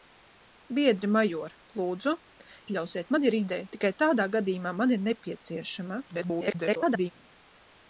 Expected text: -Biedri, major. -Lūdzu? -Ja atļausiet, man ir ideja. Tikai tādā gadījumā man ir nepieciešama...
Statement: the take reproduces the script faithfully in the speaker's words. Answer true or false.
false